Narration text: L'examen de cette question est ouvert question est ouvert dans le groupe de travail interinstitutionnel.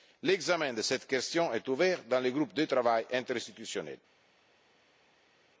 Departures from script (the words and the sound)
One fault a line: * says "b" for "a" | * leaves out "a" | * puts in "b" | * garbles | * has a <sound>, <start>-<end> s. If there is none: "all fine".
* leaves out "question est ouvert"